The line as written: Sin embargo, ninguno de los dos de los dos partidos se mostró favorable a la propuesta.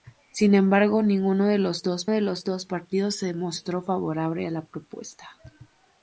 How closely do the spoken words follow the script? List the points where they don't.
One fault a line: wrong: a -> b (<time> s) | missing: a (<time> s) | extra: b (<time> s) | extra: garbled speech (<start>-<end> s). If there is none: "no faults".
no faults